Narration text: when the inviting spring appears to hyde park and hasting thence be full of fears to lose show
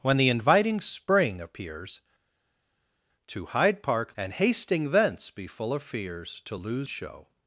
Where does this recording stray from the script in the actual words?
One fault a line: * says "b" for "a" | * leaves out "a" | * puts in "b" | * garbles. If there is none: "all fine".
all fine